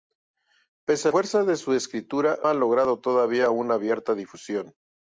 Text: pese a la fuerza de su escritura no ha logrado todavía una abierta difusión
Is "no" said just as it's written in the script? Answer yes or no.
no